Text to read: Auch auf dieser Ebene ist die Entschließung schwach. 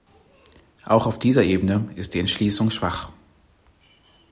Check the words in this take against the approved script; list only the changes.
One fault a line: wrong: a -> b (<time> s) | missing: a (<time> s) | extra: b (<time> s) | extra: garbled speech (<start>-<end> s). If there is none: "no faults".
no faults